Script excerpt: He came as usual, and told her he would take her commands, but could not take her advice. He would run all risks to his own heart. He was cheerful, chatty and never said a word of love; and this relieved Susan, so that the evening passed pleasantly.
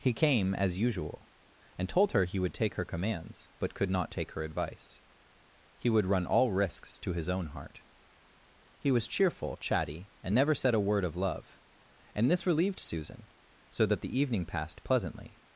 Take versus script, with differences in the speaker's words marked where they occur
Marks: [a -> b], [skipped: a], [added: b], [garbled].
He came as usual, and told her he would take her commands, but could not take her advice. He would run all risks to his own heart. He was cheerful, chatty and never said a word of love; and this relieved Susan, so that the evening passed pleasantly.